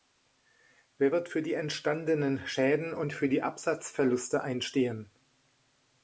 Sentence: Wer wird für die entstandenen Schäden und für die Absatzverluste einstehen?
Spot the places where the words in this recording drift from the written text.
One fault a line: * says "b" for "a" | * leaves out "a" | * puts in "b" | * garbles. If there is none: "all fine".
all fine